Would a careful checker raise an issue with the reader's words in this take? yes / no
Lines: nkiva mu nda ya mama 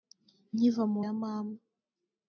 yes